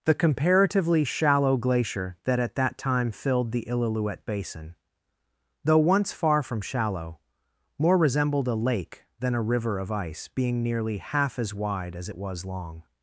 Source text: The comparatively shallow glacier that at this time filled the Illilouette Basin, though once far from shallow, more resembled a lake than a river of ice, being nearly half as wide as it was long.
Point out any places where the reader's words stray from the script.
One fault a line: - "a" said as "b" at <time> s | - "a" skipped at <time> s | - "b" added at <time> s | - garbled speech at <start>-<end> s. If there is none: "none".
- "this" said as "that" at 2.5 s